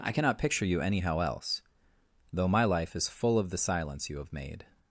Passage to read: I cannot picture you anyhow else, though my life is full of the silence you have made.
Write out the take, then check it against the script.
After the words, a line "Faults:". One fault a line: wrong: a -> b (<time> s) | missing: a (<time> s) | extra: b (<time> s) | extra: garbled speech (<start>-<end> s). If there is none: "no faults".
I cannot picture you anyhow else, though my life is full of the silence you have made.
Faults:
no faults